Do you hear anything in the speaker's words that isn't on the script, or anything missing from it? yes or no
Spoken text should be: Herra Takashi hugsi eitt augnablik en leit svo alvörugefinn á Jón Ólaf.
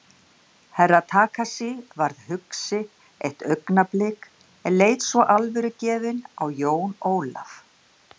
yes